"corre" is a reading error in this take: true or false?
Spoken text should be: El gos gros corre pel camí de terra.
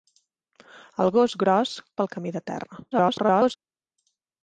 true